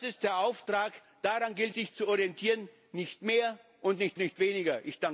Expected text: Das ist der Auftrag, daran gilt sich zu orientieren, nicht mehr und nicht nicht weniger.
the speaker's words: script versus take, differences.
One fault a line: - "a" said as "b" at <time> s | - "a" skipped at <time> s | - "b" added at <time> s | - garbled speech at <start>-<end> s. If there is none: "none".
none